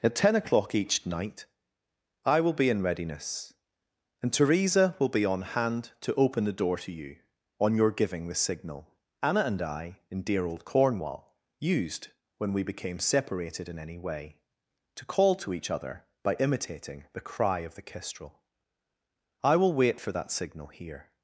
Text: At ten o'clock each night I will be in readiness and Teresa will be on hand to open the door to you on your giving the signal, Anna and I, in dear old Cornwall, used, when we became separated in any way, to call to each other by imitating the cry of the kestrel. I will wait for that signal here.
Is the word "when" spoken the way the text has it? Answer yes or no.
yes